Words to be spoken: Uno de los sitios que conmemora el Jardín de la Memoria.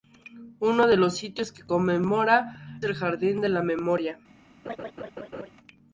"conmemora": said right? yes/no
yes